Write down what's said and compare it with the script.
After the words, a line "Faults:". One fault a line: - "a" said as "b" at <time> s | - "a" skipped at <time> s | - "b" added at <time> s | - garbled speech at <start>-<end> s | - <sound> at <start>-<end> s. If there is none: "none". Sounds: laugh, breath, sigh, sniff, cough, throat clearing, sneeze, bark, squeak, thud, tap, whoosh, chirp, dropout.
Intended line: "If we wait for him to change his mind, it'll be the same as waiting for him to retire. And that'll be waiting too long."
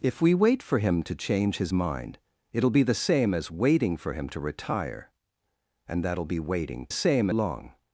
"If we wait for him to change his mind, it'll be the same as waiting for him to retire. And that'll be waiting same long."
Faults:
- "too" said as "same" at 6.9 s